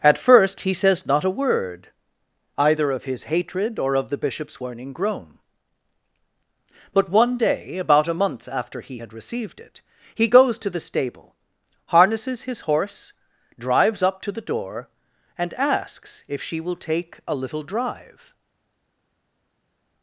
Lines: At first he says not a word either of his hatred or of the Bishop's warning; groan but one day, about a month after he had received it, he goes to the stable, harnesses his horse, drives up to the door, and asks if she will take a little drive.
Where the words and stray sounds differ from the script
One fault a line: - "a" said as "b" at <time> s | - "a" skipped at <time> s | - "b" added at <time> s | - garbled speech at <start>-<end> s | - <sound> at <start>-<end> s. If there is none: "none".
none